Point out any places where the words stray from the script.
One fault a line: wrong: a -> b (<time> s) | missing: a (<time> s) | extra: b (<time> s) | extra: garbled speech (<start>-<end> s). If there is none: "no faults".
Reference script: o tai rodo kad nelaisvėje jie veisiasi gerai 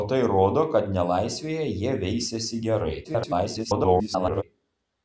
extra: garbled speech (3.0-4.4 s)